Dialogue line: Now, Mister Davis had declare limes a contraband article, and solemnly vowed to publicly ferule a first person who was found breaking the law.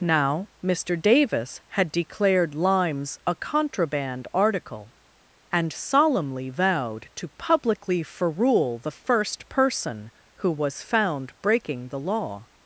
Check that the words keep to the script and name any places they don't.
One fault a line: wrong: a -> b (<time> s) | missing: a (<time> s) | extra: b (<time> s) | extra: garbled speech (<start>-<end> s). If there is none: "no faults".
wrong: declare -> declared (1.9 s)
wrong: a -> the (8.8 s)